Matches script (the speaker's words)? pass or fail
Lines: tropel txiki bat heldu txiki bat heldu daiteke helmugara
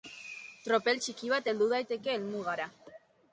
fail